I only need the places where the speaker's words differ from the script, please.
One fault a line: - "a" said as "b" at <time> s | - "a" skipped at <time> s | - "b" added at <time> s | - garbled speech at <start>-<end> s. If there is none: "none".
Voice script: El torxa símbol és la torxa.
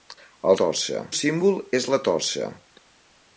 none